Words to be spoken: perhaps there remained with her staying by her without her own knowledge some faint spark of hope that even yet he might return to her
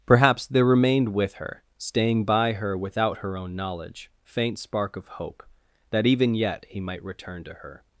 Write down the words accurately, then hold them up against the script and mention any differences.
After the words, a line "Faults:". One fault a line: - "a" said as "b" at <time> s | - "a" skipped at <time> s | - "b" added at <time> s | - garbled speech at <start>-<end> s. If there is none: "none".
perhaps there remained with her staying by her without her own knowledge faint spark of hope that even yet he might return to her
Faults:
- "some" skipped at 4.1 s